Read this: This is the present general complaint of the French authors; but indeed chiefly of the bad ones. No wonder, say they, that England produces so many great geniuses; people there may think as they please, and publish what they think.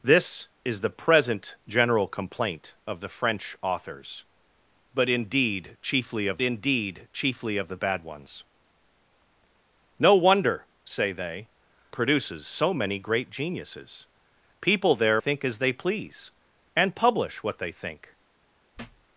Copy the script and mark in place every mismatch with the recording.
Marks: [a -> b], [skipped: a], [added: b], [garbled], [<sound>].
This is the present general complaint of the French authors; but indeed chiefly of [added: indeed chiefly of] the bad ones. No wonder, say they, [skipped: that England] produces so many great geniuses; people there [skipped: may] think as they please, and publish what they think. [thud]